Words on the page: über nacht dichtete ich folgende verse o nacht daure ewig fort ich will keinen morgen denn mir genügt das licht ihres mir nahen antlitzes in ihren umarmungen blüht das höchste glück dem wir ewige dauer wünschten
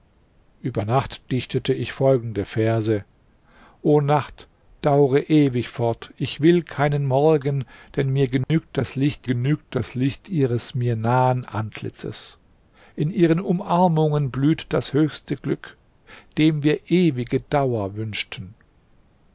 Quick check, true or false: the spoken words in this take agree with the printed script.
false